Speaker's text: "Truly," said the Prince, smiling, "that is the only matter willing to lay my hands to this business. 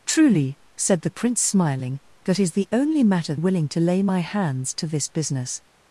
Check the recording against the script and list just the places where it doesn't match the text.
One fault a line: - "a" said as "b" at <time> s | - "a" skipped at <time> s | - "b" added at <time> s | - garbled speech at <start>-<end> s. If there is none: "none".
none